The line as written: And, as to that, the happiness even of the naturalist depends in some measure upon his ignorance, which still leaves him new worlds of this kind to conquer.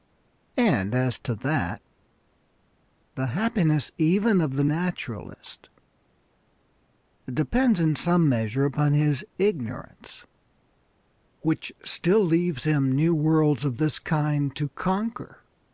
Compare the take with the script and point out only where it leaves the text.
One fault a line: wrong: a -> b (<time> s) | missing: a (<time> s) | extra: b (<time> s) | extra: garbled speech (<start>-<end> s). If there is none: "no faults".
no faults